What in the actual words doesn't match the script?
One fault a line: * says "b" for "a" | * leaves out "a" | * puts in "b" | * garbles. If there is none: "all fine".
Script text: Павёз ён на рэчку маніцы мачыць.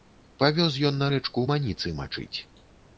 all fine